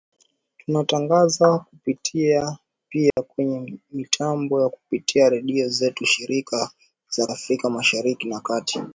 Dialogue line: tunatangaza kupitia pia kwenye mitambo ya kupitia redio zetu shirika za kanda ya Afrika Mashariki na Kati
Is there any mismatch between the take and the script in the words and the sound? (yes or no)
yes